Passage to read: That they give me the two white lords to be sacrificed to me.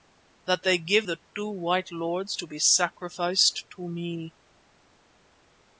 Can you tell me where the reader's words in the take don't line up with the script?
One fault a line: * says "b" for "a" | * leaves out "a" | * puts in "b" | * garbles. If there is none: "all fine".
* leaves out "me"